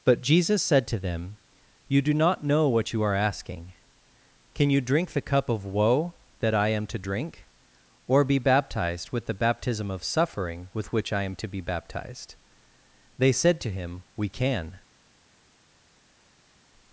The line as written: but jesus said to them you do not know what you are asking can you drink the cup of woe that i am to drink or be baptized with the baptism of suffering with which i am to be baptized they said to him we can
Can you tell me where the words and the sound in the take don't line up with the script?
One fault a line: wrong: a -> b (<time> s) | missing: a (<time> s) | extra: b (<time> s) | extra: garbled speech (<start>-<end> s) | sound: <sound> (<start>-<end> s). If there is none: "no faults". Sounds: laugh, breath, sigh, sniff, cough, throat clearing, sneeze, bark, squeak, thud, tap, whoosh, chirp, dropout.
no faults